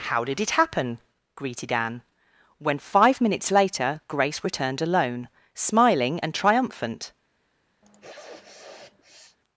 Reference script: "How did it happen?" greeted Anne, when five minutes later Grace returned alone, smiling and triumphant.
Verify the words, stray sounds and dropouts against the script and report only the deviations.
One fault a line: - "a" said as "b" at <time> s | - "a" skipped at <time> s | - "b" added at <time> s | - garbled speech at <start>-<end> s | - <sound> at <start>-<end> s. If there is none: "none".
- sniff at 7.8-9.4 s